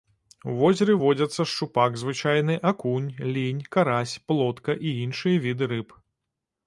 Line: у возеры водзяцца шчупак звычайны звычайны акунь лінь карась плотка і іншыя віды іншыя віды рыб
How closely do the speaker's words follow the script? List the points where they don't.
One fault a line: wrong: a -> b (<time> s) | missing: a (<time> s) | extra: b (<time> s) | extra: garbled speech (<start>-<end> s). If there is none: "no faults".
missing: звычайны (2.5 s)
missing: іншыя віды (5.6 s)